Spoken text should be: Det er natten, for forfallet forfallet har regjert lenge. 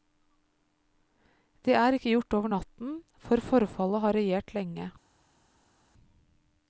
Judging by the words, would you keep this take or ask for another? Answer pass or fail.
fail